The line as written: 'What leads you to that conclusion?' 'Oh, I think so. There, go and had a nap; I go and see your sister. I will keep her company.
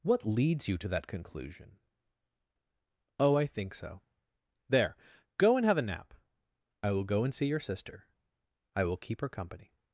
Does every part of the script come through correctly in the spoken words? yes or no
no